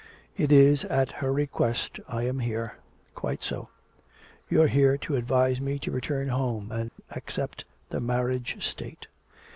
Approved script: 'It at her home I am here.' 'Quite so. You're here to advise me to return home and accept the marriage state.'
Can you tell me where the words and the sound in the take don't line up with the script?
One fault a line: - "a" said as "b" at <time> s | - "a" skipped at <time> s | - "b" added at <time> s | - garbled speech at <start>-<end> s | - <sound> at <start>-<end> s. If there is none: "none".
- "is" added at 0.5 s
- "home" said as "request" at 1.3 s
- dropout at 6.9-7.0 s